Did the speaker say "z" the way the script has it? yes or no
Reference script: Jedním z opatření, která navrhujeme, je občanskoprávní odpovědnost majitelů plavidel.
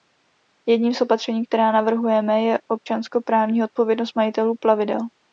yes